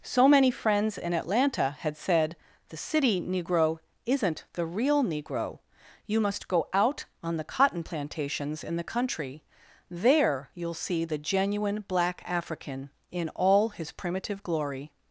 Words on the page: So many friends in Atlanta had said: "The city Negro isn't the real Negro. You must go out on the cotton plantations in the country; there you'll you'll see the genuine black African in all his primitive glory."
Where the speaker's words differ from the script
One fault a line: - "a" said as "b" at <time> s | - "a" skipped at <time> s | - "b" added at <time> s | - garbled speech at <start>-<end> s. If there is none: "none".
- "you'll" skipped at 10.7 s